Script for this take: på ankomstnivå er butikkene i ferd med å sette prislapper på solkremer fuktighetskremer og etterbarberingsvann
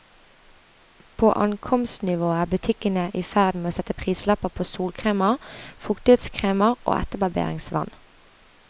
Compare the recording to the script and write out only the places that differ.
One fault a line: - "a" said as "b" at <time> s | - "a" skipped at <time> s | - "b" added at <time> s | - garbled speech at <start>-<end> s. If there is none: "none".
none